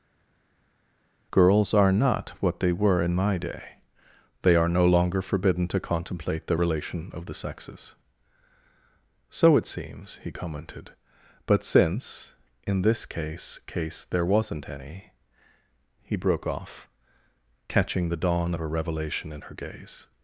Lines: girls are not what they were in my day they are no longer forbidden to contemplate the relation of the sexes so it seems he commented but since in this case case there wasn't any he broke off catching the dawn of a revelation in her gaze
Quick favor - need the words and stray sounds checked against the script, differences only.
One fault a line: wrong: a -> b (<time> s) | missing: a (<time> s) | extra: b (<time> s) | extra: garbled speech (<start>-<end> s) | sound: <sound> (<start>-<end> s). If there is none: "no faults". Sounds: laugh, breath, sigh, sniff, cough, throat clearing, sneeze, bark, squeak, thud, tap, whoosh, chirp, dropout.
no faults